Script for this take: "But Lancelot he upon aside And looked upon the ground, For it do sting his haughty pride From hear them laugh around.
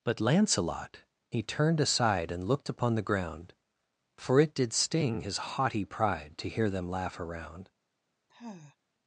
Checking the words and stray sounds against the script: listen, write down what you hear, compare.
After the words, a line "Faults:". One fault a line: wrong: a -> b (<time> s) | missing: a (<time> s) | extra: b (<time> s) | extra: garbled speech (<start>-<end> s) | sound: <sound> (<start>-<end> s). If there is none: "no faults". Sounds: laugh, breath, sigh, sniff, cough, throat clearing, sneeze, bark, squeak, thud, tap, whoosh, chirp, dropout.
"But Lancelot he turned aside And looked upon the ground, For it did sting his haughty pride To hear them laugh around.
Faults:
wrong: upon -> turned (1.4 s)
wrong: do -> did (4.5 s)
wrong: From -> To (6.4 s)
sound: sigh (8.3-8.8 s)